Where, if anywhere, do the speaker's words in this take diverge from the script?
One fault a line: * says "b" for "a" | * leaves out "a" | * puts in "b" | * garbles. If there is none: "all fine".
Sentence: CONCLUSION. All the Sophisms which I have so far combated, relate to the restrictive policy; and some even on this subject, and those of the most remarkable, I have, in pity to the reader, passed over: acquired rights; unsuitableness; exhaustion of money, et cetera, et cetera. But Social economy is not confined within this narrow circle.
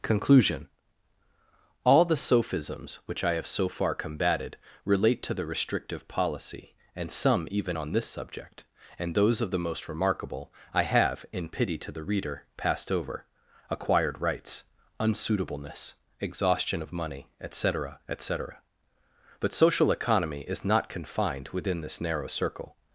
all fine